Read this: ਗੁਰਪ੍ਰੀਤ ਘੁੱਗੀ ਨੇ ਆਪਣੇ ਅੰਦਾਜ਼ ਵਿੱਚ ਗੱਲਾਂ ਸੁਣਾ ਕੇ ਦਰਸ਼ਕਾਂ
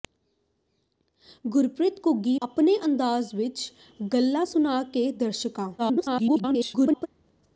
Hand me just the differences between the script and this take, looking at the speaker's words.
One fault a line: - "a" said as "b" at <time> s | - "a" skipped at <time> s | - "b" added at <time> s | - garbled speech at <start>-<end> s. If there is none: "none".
- "ਨੇ" skipped at 2.4 s
- garbled speech at 5.8-7.1 s